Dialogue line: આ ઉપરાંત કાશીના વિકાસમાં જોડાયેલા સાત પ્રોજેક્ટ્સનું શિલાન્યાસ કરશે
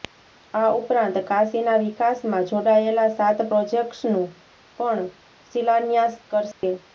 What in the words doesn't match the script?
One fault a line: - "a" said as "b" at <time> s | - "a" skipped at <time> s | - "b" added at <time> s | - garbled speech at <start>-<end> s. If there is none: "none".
- "પણ" added at 4.8 s